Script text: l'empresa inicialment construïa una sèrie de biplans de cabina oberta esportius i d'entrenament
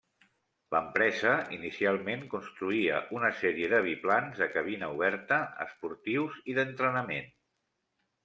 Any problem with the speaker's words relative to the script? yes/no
no